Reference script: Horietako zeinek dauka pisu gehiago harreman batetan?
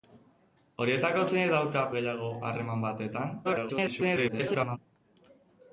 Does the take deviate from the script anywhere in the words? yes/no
yes